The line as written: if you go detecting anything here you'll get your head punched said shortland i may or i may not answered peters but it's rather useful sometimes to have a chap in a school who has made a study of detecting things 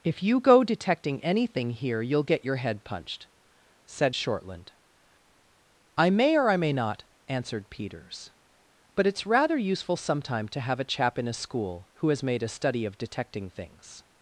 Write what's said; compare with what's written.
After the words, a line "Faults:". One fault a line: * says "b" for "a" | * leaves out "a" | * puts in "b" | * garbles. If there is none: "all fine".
if you go detecting anything here you'll get your head punched said shortland i may or i may not answered peters but it's rather useful sometime to have a chap in a school who has made a study of detecting things
Faults:
* says "sometime" for "sometimes"